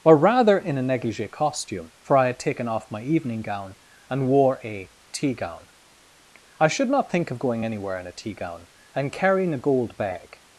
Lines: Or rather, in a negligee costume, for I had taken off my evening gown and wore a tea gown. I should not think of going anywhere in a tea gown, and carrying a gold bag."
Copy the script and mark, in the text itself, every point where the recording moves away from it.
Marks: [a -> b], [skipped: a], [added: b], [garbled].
Or rather, in a negligee costume, for I had taken off my evening gown and wore a tea gown. I should not think of going anywhere in a tea gown, and carrying a gold bag."